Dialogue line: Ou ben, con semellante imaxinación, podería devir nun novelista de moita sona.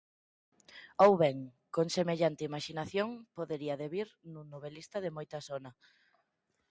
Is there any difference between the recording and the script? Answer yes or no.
no